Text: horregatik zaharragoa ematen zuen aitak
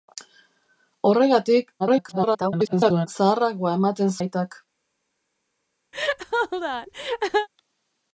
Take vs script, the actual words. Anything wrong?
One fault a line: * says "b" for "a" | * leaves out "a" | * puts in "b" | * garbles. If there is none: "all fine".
* garbles
* leaves out "zuen"